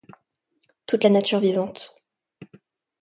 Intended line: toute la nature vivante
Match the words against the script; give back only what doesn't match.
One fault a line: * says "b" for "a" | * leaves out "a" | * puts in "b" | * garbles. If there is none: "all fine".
all fine